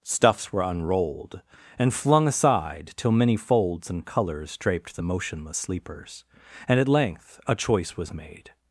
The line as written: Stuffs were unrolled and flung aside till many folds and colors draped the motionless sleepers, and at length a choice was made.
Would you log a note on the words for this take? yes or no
no